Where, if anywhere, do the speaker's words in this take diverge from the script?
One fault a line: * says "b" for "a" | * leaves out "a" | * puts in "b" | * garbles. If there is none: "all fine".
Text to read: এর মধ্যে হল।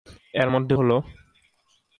all fine